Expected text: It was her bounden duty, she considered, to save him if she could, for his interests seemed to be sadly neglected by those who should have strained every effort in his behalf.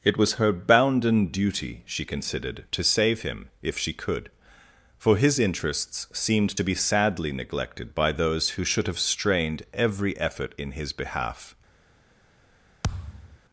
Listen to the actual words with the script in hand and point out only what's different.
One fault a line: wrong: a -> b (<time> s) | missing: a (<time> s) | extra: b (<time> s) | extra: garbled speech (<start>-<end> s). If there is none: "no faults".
no faults